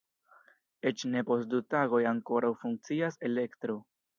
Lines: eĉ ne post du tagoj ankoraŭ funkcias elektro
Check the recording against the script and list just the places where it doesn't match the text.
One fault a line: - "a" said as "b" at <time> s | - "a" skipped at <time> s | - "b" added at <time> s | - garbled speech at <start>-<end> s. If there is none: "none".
none